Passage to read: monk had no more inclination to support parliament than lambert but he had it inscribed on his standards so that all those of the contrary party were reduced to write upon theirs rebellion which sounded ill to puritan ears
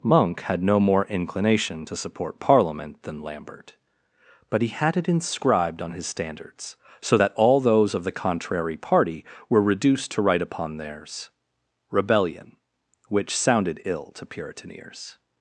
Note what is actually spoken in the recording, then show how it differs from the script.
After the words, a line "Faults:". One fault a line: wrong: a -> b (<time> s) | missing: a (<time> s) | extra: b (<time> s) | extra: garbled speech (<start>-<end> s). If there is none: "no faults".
monk had no more inclination to support parliament than lambert but he had it inscribed on his standards so that all those of the contrary party were reduced to write upon theirs rebellion which sounded ill to puritan ears
Faults:
no faults